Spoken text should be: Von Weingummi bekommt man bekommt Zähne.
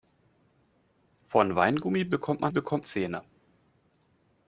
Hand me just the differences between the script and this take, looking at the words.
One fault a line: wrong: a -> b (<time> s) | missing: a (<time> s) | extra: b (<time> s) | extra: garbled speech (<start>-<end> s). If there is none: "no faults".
no faults